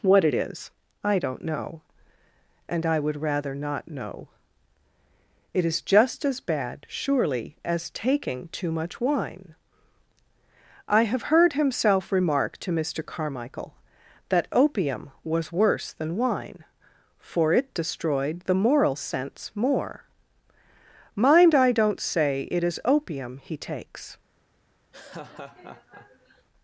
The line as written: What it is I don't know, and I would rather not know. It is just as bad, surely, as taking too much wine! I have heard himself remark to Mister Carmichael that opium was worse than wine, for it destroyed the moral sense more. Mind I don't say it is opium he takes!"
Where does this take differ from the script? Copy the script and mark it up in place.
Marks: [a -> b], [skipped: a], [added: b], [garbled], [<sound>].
What it is I don't know, and I would rather not know. It is just as bad, surely, as taking too much wine! I have heard himself remark to Mister Carmichael that opium was worse than wine, for it destroyed the moral sense more. Mind I don't say it is opium he takes!" [laugh]